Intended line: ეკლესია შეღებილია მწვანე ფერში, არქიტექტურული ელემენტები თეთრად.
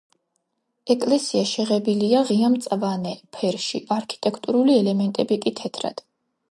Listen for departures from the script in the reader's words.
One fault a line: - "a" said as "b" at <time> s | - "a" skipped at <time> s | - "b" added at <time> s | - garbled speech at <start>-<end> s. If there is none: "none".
- "ღია" added at 2.3 s
- "კი" added at 5.5 s